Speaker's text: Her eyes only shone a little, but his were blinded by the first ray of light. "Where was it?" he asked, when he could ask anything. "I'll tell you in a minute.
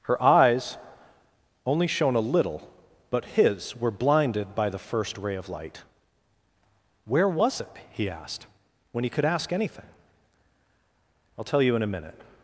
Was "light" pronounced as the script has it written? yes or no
yes